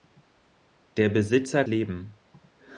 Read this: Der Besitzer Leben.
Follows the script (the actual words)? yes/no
yes